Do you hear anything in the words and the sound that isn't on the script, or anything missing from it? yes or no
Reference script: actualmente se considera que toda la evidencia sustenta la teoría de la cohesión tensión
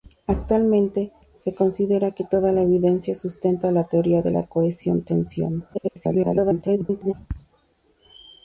yes